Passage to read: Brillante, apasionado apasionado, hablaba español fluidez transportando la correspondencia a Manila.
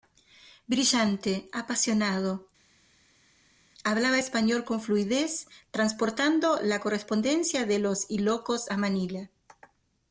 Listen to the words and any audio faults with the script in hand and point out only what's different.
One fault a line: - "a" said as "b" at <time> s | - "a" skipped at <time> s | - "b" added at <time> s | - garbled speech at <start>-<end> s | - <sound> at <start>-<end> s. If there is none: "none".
- "apasionado" skipped at 2.5 s
- "con" added at 4.6 s
- "de los Ilocos" added at 7.7 s